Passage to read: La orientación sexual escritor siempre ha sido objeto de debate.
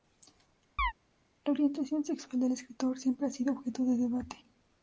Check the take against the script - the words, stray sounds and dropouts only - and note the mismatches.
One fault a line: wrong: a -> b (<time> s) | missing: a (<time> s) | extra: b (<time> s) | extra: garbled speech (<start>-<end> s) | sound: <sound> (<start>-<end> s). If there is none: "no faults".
sound: chirp (0.8-0.9 s)
extra: del (2.4 s)